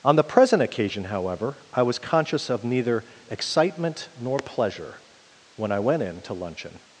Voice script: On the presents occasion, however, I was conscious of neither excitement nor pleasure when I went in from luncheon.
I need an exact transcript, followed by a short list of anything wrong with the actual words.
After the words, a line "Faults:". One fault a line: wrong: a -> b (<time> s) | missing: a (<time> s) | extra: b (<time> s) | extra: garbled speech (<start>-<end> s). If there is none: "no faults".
On the present occasion, however, I was conscious of neither excitement nor pleasure when I went in to luncheon.
Faults:
wrong: presents -> present (0.2 s)
wrong: from -> to (6.2 s)